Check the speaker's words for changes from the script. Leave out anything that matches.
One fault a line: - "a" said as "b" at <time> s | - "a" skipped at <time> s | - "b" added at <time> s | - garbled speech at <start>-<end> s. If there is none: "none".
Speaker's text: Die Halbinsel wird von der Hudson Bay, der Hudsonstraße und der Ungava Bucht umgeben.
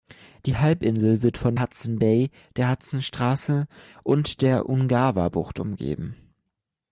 - "der" skipped at 1.6 s